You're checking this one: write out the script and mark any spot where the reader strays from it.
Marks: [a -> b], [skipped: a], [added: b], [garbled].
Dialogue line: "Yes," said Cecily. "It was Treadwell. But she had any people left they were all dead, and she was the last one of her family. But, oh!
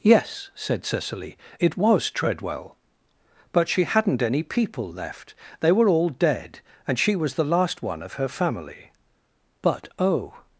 "Yes," said Cecily. "It was Treadwell. But she [had -> hadn't] any people left they were all dead, and she was the last one of her family. But, oh!